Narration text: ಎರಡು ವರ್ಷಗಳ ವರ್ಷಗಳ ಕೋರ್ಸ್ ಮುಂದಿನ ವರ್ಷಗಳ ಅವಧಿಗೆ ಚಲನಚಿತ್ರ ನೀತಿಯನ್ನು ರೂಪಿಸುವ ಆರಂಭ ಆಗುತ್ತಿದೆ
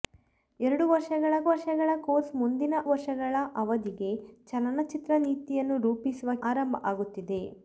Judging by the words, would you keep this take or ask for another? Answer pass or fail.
pass